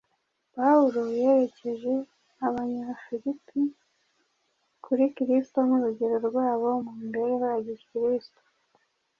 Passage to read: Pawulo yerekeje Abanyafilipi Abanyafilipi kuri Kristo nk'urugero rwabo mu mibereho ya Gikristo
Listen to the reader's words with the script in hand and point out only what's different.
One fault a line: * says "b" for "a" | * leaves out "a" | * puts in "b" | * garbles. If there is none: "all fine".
* leaves out "Abanyafilipi"